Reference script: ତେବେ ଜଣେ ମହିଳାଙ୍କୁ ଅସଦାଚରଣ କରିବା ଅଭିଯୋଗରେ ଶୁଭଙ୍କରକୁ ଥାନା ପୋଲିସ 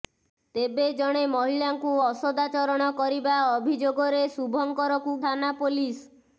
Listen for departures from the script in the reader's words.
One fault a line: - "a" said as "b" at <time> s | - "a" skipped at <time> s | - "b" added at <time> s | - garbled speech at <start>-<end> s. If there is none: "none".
none